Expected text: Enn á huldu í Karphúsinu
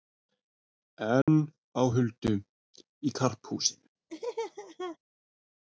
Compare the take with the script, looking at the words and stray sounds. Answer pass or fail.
fail